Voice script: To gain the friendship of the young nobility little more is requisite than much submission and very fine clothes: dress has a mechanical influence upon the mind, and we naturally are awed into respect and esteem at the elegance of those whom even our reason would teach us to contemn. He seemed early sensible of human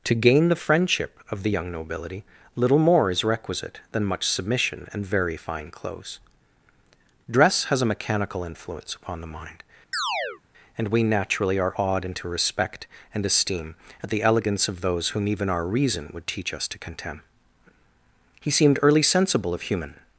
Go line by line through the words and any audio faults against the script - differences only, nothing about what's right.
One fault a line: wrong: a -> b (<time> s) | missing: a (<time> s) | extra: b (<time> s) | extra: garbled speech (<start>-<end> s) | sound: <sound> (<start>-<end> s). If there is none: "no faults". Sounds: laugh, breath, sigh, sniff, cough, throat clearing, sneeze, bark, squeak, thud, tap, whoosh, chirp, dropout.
sound: chirp (9.9-10.4 s)